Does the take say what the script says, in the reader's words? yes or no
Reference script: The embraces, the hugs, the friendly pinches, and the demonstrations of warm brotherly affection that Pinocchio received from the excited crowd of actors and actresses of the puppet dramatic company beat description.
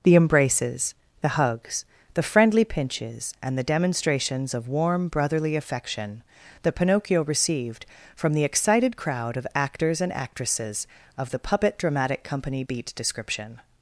yes